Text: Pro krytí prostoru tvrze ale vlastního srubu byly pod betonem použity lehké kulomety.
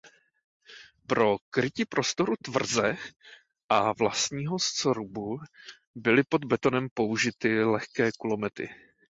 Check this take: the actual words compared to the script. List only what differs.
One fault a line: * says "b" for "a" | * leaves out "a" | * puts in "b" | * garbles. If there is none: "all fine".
* says "a" for "ale"